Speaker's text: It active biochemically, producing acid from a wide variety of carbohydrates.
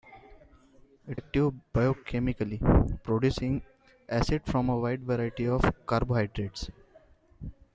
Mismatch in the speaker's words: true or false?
false